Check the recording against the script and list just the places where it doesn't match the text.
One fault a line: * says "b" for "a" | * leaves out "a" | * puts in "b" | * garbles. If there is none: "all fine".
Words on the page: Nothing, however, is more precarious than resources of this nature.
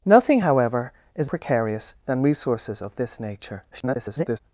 * leaves out "more"
* garbles